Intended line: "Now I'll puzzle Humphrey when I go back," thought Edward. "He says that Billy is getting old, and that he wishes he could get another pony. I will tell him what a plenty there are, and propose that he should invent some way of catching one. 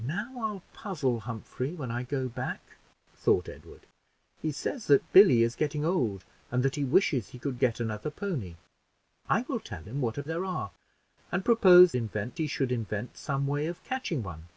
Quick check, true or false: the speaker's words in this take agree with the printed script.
false